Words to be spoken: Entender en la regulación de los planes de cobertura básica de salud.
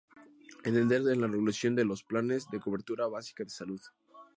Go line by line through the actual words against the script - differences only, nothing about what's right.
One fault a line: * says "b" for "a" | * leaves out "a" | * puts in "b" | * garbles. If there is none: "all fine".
all fine